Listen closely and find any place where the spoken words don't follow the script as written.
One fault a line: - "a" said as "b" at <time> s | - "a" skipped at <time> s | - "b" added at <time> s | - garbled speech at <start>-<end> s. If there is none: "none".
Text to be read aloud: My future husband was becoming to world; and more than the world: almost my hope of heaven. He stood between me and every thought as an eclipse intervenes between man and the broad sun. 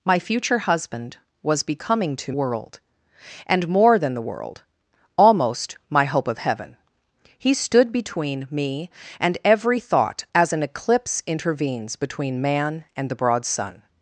none